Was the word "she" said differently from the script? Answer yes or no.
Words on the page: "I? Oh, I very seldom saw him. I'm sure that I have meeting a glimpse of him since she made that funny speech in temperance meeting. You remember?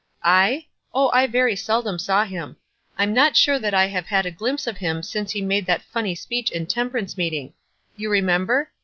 yes